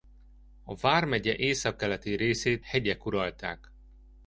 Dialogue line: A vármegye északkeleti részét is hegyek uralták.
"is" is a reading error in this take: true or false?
true